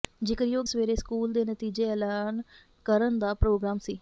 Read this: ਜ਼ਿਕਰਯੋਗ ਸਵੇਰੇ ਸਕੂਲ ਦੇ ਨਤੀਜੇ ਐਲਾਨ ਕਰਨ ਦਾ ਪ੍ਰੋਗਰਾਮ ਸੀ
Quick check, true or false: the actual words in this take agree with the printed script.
true